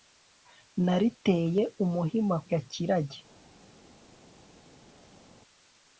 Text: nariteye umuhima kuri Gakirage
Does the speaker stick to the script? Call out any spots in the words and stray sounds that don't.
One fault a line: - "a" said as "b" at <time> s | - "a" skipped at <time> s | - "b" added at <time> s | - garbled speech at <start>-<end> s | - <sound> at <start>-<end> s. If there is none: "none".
- "kuri" skipped at 2.4 s